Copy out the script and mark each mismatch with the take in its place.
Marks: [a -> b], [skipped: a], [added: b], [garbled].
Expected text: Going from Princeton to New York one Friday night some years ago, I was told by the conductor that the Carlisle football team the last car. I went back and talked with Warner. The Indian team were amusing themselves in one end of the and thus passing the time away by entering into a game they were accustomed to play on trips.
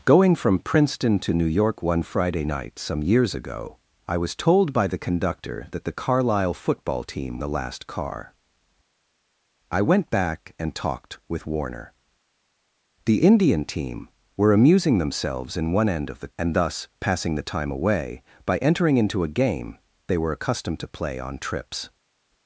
Going from Princeton to New York one Friday night some years ago, I was told by the conductor that the Carlisle football team the last car. I went back and talked with Warner. The Indian team were amusing themselves in one end of the and thus passing the time away by entering into a game they were accustomed to play on trips.